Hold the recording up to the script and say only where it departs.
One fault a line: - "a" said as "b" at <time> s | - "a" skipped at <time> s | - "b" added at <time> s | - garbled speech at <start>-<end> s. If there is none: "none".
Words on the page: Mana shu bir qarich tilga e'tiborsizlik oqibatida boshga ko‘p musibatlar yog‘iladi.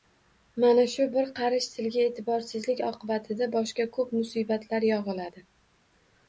none